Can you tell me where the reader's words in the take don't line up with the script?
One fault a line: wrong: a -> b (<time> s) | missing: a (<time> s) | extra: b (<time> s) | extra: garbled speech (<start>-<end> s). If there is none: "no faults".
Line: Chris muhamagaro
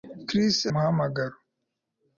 no faults